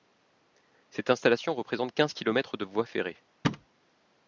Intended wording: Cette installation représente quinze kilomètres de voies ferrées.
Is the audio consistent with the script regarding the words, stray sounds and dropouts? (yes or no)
no